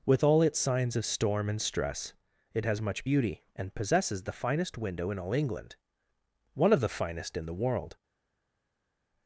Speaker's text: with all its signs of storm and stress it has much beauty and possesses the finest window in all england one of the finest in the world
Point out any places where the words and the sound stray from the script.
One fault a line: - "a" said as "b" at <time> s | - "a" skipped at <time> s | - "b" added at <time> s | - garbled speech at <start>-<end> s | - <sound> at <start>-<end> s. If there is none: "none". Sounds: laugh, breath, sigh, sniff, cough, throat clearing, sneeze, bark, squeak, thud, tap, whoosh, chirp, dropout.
none